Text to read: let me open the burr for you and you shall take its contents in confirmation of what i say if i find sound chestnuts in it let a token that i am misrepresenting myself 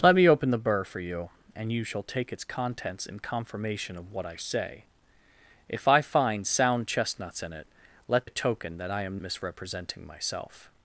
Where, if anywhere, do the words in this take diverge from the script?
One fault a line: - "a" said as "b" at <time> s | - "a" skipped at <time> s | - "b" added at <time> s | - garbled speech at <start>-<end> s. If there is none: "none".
none